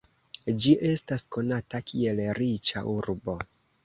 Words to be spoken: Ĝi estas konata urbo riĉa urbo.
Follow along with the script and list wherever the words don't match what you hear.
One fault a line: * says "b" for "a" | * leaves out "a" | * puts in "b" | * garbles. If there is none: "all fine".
* says "kiel" for "urbo"